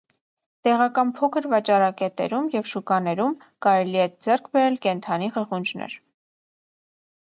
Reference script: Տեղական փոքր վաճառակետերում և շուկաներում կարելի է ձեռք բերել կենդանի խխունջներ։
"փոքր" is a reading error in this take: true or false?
false